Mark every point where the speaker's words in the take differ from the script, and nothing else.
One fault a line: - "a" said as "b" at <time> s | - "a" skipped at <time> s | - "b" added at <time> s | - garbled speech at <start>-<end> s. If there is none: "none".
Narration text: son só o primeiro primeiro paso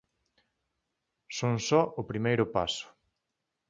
- "primeiro" skipped at 2.5 s